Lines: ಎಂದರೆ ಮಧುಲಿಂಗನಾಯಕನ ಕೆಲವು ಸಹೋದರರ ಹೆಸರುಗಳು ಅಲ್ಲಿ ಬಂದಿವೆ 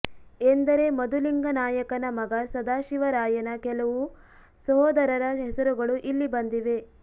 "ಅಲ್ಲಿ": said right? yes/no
no